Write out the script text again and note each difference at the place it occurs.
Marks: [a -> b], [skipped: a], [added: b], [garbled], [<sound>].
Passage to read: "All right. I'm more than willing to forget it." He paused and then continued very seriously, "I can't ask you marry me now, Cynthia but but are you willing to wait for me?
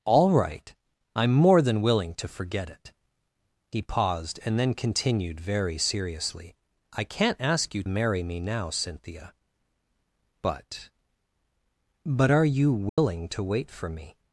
"All right. I'm more than willing to forget it." He paused and then continued very seriously, "I can't ask you marry me now, Cynthia but but are you willing [dropout] to wait for me?